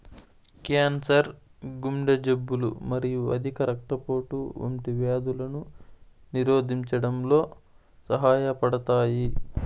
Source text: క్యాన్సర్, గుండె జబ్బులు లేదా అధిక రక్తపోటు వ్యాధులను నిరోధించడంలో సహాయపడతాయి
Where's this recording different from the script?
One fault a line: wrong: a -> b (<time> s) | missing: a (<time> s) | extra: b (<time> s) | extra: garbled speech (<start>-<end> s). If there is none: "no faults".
wrong: లేదా -> మరియు (2.9 s)
extra: వంటి (4.6 s)